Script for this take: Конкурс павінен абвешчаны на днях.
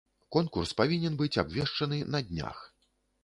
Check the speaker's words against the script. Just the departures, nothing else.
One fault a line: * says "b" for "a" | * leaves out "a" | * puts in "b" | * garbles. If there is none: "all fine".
* puts in "быць"